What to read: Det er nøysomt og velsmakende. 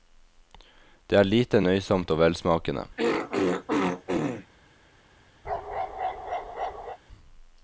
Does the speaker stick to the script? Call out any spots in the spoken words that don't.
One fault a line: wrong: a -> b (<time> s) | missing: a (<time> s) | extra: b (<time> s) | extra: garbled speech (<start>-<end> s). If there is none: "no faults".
extra: lite (1.3 s)